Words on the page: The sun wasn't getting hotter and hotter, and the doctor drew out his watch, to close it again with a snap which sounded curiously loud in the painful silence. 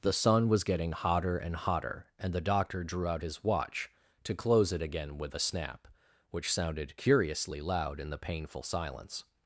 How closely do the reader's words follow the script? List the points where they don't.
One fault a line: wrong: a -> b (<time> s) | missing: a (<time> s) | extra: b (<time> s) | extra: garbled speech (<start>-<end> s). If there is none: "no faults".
wrong: wasn't -> was (0.5 s)